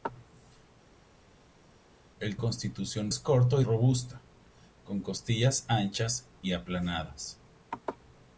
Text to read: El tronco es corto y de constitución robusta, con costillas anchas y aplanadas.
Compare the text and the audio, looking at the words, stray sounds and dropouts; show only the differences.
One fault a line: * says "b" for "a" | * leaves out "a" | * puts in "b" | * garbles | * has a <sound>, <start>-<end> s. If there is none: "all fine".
* says "constitución" for "tronco"
* leaves out "de constitución"